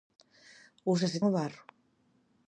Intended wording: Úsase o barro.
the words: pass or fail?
pass